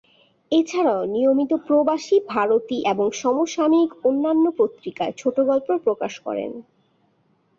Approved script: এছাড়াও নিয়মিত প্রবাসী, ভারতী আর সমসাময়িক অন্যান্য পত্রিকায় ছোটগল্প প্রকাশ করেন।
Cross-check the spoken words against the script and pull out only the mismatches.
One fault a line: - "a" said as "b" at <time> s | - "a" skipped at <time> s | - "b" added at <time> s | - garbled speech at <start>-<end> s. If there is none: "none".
- "আর" said as "এবং" at 2.8 s